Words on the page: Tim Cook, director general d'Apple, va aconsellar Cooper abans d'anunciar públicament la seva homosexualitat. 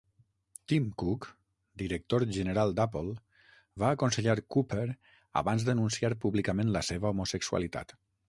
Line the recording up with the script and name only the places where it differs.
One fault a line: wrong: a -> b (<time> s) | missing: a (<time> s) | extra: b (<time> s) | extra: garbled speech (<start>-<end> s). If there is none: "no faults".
no faults